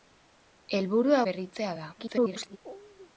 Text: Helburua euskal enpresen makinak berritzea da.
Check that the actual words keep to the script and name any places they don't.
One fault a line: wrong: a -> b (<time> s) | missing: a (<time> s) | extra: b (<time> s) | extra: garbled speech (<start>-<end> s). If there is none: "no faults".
missing: euskal enpresen makinak (1.2 s)
extra: garbled speech (2.0-2.6 s)